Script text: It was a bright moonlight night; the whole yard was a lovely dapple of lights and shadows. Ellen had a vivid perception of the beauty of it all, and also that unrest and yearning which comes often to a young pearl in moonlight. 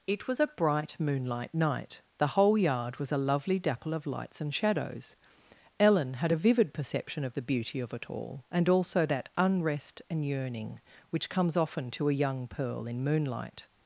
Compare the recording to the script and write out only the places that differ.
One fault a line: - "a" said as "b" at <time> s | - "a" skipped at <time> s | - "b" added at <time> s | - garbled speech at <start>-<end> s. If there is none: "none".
none